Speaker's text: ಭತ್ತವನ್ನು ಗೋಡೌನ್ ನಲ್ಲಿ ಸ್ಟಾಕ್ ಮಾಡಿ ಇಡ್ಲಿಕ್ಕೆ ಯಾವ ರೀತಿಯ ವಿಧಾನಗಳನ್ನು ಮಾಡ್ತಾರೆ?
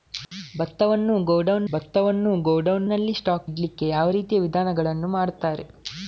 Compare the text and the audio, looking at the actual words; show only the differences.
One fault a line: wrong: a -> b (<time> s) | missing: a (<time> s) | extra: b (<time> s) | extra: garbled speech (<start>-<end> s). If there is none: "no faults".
extra: ಭತ್ತವನ್ನು ಗೋಡೌನ್ (1.7 s)
missing: ಮಾಡಿ (3.5 s)